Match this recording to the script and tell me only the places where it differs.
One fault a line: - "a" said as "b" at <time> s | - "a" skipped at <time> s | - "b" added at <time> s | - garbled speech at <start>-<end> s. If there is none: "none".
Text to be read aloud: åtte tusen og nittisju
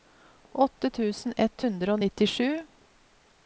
- "ett hundre" added at 1.4 s